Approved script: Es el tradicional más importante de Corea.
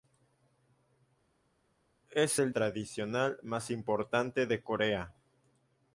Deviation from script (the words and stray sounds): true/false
false